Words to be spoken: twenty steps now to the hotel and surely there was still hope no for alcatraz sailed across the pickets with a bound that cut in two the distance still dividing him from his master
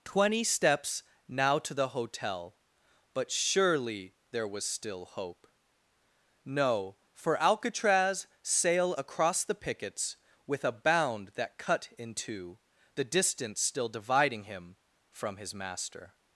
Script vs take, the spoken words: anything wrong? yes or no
yes